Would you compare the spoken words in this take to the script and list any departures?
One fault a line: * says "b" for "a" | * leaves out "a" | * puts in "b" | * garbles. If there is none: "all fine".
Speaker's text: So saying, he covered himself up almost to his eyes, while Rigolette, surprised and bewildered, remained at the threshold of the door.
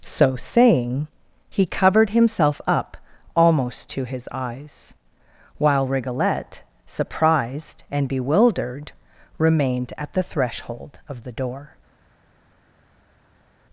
all fine